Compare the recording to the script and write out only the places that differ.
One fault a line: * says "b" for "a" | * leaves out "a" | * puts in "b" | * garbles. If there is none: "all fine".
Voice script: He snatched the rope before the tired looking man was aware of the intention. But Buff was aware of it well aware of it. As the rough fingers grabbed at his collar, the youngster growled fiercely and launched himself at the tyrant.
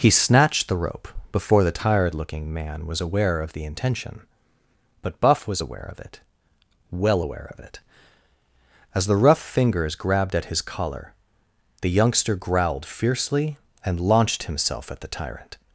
all fine